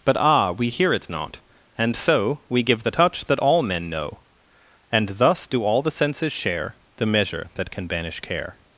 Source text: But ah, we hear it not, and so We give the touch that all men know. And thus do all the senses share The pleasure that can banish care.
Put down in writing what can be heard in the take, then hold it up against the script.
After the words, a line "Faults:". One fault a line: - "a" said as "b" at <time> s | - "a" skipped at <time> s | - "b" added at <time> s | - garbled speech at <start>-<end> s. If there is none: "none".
But ah, we hear it not, and so We give the touch that all men know. And thus do all the senses share The measure that can banish care.
Faults:
- "pleasure" said as "measure" at 7.1 s